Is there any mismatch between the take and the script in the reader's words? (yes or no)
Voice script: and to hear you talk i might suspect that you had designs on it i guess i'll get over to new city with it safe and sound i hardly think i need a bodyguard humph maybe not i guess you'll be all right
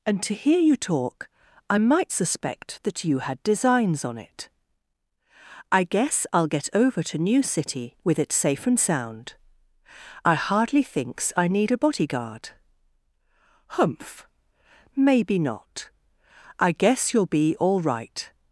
yes